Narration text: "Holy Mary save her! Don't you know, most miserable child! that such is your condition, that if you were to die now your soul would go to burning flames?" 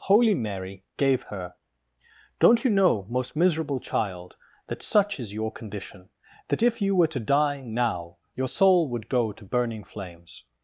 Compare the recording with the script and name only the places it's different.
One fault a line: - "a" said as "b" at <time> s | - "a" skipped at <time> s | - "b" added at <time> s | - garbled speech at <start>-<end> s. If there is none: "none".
- "save" said as "gave" at 1.0 s